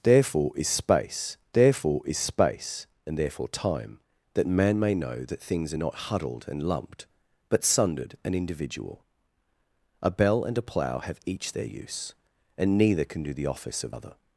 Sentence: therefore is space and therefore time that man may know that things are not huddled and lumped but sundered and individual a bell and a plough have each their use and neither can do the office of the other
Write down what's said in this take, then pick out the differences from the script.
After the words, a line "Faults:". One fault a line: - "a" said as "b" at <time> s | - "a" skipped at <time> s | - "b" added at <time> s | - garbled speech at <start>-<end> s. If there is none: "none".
therefore is space therefore is space and therefore time that man may know that things are not huddled and lumped but sundered and individual a bell and a plough have each their use and neither can do the office of other
Faults:
- "therefore is space" added at 1.5 s
- "the" skipped at 13.9 s